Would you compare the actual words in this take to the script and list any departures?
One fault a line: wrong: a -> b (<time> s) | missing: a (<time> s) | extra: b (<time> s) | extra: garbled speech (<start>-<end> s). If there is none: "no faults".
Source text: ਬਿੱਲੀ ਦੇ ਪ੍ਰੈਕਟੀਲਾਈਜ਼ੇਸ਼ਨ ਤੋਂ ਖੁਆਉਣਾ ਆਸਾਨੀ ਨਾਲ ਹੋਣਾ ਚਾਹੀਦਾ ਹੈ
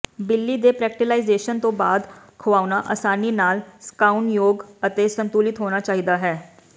extra: ਬਾਅਦ (1.7 s)
extra: ਸੁਕਾਉਣਯੋਗ ਅਤੇ ਸੰਤੁਲਿਤ (3.8 s)